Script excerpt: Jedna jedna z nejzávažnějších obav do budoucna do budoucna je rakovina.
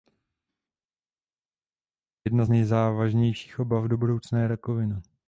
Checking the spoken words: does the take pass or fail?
fail